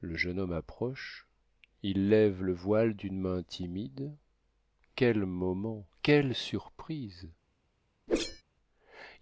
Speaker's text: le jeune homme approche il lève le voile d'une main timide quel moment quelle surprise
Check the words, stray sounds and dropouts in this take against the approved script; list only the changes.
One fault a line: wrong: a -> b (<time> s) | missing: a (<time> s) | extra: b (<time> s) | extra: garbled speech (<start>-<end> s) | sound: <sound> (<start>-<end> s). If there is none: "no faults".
sound: whoosh (8.1-8.4 s)